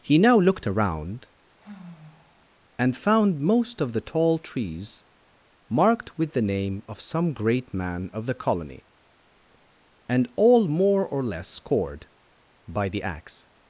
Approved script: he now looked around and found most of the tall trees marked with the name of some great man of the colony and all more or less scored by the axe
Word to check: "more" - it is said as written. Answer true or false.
true